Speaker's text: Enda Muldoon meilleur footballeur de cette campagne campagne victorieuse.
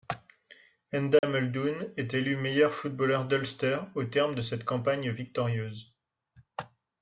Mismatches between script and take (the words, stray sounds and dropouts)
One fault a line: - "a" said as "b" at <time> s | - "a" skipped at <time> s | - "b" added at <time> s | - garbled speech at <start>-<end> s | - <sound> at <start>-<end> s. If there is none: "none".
- dropout at 1.2-1.2 s
- "est élu" added at 1.9 s
- "d'Ulster au terme" added at 3.3 s
- "campagne" skipped at 5.1 s